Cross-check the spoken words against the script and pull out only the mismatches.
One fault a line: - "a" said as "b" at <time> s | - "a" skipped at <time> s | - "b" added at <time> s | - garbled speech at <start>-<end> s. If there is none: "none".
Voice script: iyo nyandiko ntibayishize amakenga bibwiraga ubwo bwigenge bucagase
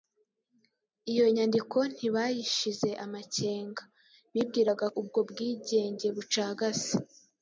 none